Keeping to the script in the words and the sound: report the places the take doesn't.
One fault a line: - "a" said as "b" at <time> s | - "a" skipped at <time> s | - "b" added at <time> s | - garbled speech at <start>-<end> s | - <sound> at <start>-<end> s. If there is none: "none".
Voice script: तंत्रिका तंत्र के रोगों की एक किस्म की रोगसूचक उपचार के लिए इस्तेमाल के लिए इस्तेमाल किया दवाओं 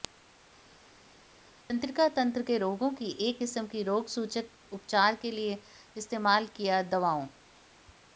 - "के लिए इस्तेमाल" skipped at 6.5 s